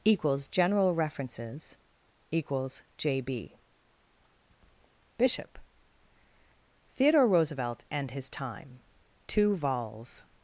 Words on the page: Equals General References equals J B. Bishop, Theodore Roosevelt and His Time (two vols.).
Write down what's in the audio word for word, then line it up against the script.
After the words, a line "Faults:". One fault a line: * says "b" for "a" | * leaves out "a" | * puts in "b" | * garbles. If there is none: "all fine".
Equals General References equals J B. Bishop, Theodore Roosevelt and His Time (two vols.).
Faults:
all fine